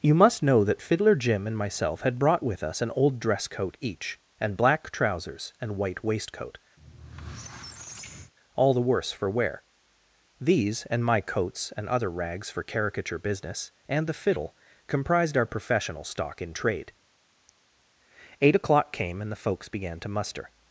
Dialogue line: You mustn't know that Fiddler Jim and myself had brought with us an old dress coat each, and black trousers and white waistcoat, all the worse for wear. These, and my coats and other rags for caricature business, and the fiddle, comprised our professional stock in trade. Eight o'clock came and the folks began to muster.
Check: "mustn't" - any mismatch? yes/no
yes